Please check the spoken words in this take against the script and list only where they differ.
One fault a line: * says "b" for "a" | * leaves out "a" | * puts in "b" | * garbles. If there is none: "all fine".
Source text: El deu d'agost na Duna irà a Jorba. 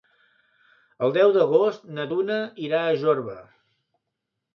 all fine